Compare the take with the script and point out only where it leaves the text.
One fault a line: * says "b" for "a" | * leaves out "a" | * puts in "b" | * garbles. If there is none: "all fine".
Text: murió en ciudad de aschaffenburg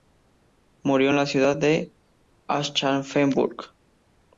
* puts in "la"